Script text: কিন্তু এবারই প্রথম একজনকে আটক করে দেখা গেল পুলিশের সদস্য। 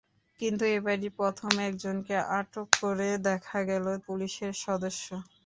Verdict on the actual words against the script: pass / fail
pass